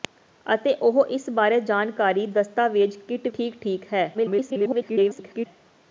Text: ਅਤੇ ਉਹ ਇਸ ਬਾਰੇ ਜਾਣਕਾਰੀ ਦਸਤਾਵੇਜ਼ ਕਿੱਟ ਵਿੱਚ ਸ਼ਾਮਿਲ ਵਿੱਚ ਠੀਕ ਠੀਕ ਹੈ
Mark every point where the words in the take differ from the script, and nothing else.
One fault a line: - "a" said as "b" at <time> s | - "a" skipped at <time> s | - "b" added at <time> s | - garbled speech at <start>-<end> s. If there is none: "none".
- "ਵਿੱਚ ਸ਼ਾਮਿਲ ਵਿੱਚ" skipped at 3.3 s
- garbled speech at 4.1-5.5 s